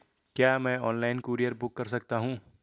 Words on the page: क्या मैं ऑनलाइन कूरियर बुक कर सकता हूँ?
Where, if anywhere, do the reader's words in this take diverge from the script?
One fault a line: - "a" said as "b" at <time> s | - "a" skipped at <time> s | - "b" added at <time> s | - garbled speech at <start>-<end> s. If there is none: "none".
none